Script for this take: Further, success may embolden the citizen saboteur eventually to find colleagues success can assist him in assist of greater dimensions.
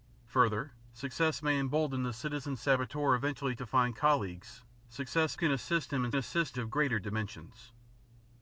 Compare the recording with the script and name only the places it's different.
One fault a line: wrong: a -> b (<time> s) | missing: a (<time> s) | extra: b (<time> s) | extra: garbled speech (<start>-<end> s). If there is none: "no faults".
no faults